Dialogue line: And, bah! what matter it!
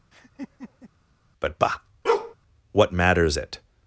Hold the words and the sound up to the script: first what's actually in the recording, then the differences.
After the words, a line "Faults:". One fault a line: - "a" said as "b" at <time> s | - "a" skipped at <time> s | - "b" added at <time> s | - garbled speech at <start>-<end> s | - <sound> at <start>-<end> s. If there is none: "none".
But, bah! what matters it!
Faults:
- laugh at 0.1-0.9 s
- "And" said as "But" at 1.4 s
- bark at 2.0-2.3 s
- "matter" said as "matters" at 2.9 s